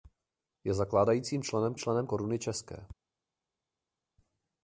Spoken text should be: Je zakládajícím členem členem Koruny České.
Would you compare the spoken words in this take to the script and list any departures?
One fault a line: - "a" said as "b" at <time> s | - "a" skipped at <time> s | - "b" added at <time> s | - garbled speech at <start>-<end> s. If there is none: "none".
none